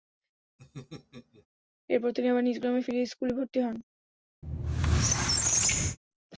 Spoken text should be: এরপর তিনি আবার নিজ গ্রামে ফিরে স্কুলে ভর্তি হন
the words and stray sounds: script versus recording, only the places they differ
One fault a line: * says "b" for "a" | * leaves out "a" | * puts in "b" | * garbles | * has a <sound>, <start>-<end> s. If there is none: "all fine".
* has a laugh, 0.6-1.5 s
* has a squeak, 4.4-6.0 s